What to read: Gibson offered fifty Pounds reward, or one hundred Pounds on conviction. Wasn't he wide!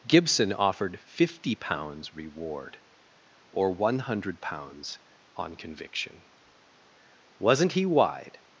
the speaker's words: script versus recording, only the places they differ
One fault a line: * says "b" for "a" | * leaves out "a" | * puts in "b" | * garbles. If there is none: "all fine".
all fine